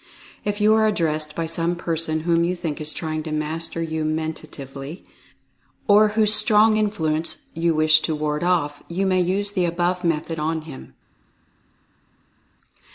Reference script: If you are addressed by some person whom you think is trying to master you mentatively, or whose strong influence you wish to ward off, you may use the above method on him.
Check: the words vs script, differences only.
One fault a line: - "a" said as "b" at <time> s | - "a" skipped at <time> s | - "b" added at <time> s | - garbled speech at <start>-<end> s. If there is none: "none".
none